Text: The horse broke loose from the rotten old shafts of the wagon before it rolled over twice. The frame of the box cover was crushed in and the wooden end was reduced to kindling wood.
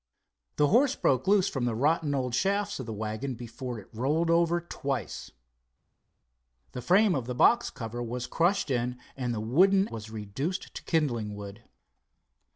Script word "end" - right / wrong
wrong